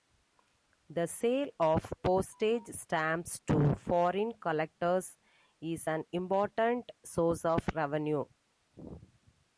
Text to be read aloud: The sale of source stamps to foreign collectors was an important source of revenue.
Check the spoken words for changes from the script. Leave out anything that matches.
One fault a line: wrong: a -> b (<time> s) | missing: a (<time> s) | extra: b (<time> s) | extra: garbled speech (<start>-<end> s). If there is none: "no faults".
wrong: source -> postage (2.0 s)
wrong: was -> is (5.6 s)